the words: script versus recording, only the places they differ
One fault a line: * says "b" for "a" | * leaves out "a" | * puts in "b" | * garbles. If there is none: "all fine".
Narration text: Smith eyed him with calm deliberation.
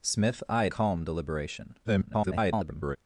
* leaves out "him with"
* garbles